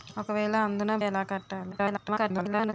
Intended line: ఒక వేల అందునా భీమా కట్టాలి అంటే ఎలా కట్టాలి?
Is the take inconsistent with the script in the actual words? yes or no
yes